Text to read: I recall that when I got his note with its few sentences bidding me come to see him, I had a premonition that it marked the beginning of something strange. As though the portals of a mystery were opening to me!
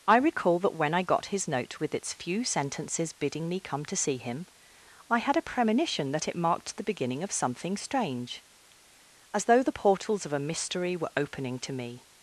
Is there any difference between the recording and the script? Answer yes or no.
no